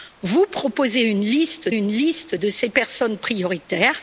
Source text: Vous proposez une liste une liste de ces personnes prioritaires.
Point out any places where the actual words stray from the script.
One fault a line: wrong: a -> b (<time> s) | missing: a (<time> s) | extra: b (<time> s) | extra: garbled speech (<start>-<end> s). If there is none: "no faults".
no faults